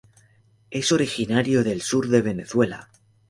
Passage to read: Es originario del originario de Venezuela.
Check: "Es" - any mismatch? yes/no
no